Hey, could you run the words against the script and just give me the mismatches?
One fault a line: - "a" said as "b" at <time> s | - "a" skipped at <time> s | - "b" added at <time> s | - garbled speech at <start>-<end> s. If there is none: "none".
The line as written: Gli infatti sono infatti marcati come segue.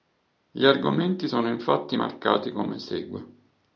- "infatti" said as "argomenti" at 0.7 s